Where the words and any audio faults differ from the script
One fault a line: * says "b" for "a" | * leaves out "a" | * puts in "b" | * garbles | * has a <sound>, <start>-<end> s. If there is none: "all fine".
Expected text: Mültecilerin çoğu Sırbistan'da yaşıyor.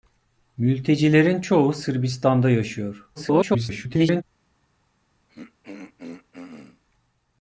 * garbles
* has a throat clearing, 5.3-6.8 s